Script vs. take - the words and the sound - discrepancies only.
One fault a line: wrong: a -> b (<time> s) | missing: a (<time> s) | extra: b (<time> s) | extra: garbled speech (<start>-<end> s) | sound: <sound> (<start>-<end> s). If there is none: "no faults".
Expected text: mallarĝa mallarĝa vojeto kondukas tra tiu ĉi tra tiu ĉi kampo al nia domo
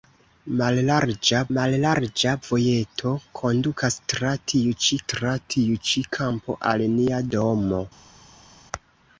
no faults